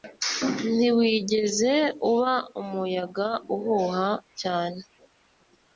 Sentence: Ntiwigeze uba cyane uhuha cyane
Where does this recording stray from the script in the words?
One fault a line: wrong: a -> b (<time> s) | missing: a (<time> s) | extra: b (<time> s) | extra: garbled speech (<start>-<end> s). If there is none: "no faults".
wrong: cyane -> umuyaga (2.6 s)